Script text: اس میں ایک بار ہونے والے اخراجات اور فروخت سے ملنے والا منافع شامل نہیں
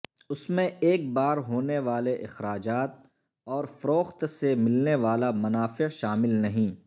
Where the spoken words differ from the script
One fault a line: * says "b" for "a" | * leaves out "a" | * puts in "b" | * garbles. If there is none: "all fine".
all fine